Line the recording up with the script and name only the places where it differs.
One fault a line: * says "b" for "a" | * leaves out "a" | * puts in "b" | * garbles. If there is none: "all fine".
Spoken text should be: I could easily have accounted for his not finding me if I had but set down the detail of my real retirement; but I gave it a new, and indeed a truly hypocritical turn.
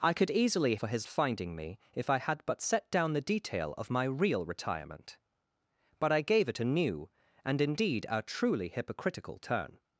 * leaves out "have accounted"
* leaves out "not"